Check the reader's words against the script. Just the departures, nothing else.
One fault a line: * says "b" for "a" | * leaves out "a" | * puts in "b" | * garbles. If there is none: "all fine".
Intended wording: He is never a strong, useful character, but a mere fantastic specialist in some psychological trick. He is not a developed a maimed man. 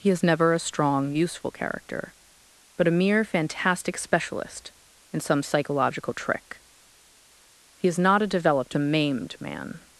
all fine